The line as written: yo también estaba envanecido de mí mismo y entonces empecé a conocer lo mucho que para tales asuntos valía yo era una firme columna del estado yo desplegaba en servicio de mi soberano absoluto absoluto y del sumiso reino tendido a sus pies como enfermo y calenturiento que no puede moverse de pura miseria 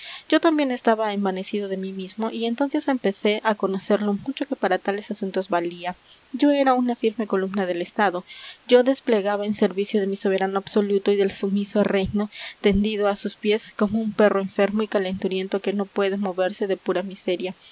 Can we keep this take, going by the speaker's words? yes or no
no